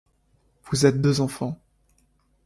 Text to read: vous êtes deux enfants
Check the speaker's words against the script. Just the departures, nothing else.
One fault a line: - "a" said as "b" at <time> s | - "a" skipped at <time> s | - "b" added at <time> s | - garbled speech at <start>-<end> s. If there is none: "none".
none